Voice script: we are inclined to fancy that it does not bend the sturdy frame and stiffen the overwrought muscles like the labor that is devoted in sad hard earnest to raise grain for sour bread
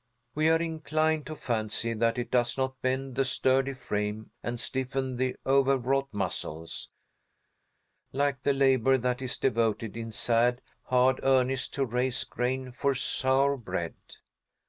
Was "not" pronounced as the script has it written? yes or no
yes